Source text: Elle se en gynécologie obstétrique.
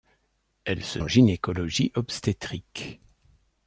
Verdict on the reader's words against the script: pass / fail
pass